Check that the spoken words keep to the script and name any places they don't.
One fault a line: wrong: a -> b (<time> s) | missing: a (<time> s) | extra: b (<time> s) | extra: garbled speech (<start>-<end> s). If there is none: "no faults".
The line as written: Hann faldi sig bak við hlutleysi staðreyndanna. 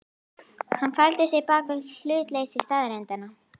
no faults